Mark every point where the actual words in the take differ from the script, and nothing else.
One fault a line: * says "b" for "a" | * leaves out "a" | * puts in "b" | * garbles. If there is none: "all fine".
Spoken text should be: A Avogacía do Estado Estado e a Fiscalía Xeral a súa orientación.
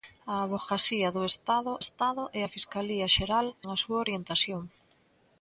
all fine